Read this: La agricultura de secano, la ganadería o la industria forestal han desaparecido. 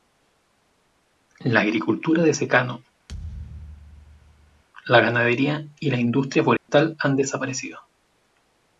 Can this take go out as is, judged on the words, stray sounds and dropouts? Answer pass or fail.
fail